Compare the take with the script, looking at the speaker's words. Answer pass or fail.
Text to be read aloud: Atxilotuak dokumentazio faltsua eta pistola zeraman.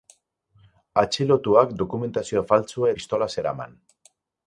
fail